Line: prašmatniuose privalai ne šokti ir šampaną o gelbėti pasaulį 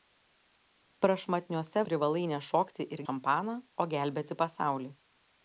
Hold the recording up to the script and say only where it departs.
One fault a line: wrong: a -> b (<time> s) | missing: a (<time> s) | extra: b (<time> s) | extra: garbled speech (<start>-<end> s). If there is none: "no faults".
no faults